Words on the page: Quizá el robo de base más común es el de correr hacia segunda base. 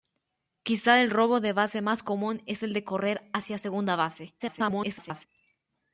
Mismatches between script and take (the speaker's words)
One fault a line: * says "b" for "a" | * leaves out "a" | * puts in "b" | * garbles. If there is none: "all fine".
* garbles